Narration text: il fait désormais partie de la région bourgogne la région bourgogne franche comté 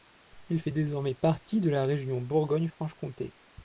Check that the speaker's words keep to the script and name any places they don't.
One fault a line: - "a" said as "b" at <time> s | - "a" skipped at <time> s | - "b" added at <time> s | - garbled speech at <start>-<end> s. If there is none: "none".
- "la région bourgogne" skipped at 2.7 s